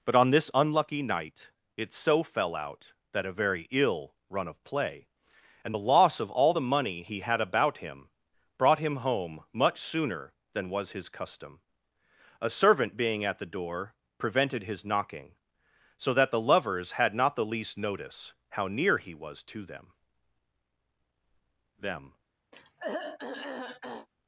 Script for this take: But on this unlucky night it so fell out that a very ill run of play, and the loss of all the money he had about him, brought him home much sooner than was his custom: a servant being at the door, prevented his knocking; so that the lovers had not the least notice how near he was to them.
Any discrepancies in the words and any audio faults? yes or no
yes